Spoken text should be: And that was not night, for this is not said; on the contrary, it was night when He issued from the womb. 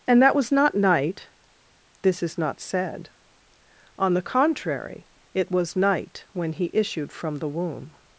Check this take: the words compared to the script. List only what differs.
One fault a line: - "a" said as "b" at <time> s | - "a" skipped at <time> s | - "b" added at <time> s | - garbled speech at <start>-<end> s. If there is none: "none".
- "for" skipped at 1.3 s